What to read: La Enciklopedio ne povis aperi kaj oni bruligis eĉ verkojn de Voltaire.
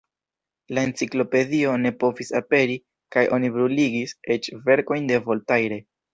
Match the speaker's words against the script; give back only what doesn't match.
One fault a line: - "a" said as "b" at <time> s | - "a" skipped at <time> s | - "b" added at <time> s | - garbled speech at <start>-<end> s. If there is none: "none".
none